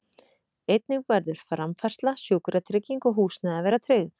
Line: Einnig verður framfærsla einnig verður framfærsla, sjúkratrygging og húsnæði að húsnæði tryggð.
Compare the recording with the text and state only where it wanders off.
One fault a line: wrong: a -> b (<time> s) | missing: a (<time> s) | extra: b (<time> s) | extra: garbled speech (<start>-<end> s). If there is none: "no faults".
missing: einnig verður framfærsla (2.1 s)
wrong: húsnæði -> vera (3.7 s)